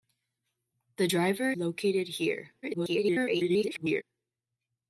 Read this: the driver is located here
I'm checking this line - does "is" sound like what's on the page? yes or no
no